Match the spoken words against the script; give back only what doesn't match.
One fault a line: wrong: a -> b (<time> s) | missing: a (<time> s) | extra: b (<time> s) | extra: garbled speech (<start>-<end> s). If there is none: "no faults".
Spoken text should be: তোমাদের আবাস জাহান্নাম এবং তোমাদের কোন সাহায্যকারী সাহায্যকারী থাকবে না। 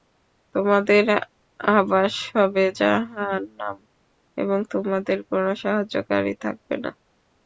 extra: হবে (2.3 s)
missing: সাহায্যকারী (6.3 s)